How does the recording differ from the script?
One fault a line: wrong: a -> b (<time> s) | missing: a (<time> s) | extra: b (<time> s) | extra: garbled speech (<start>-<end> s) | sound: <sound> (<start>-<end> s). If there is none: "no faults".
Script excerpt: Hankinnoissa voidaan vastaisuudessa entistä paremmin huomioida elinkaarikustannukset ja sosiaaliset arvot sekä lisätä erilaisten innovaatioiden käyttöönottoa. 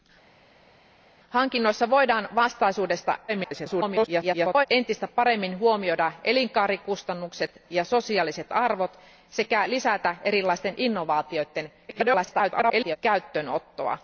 extra: garbled speech (3.3-4.7 s)
extra: garbled speech (11.9-13.0 s)